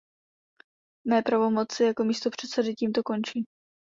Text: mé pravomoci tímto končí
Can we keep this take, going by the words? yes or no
no